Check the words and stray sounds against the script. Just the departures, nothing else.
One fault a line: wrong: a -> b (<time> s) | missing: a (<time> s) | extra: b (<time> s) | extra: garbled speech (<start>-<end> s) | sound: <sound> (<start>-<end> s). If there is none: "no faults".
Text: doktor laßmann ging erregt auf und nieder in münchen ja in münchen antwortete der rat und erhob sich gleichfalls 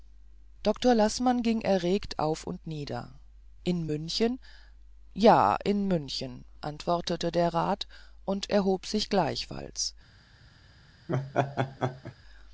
sound: laugh (11.1-12.2 s)